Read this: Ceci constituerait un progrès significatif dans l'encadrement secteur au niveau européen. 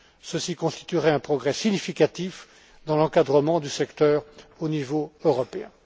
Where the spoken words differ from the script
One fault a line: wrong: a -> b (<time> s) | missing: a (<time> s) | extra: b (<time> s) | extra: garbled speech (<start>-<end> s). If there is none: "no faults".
extra: du (3.6 s)